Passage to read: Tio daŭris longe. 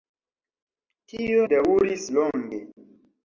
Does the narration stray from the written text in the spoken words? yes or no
no